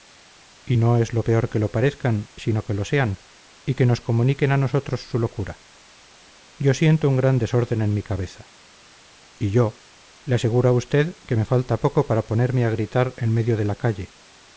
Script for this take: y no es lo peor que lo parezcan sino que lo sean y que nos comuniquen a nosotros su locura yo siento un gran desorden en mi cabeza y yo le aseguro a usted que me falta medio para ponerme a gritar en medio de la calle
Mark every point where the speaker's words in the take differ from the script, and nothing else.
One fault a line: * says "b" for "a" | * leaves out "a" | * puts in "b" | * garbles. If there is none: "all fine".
* says "poco" for "medio"